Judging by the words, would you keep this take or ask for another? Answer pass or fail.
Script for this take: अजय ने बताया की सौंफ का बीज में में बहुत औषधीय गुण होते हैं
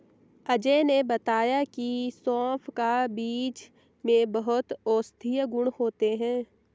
fail